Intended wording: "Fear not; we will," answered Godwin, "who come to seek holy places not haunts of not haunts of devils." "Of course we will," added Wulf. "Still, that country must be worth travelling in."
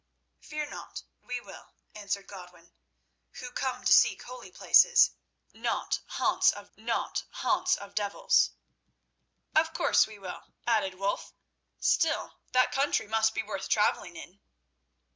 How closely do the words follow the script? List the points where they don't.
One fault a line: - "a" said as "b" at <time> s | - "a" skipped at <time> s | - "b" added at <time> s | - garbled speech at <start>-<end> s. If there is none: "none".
none